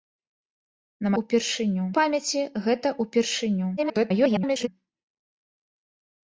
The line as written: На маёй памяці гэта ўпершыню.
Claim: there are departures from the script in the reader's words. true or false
true